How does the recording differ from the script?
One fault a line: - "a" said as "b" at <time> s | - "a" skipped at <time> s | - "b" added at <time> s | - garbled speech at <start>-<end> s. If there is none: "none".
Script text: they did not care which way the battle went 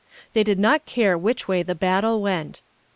none